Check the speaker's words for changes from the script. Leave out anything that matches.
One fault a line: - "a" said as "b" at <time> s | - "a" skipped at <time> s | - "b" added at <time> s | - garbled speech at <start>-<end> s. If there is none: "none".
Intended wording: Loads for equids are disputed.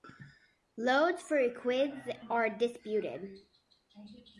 none